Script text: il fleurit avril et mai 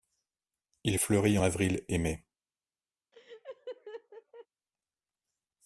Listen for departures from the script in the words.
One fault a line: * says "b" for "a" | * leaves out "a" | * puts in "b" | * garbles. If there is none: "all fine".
all fine